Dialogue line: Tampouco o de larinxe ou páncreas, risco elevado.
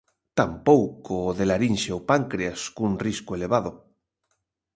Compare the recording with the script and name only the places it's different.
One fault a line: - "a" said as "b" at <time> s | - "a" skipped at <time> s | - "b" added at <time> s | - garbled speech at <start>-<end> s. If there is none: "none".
- "cun" added at 2.7 s